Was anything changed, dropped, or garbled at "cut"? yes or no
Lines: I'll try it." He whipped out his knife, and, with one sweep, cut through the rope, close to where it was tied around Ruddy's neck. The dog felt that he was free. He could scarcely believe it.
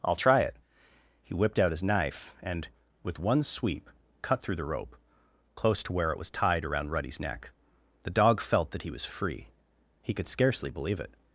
no